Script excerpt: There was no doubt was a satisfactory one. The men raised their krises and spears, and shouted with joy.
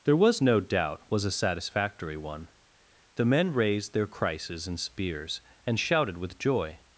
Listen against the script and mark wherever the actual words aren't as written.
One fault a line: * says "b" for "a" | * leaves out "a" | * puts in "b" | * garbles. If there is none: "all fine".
all fine